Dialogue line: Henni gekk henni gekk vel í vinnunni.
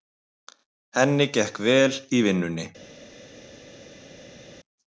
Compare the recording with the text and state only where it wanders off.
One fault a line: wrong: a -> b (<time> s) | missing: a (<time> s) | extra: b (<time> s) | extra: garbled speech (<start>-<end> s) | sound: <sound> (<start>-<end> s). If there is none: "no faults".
missing: henni gekk (1.6 s)